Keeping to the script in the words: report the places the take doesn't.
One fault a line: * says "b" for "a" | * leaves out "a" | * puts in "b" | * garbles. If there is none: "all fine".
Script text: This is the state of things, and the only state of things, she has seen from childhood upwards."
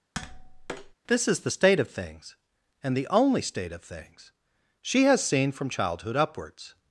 all fine